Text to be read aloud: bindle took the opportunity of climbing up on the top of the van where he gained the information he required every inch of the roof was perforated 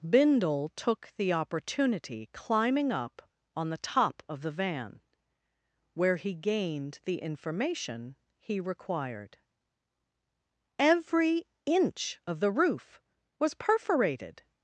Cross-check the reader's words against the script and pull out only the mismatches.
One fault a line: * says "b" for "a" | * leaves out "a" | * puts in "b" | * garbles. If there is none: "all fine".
* leaves out "of"